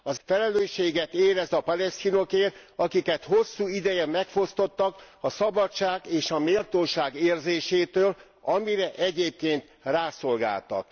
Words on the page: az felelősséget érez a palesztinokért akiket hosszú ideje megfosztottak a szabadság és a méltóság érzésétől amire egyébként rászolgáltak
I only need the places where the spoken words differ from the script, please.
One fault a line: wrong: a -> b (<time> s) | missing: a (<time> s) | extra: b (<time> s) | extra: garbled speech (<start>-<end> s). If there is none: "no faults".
no faults